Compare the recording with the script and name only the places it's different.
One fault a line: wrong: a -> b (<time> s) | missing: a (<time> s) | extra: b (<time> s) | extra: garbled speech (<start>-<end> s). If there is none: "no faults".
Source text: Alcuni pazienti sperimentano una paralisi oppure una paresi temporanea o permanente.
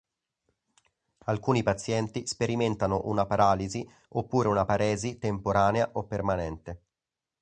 no faults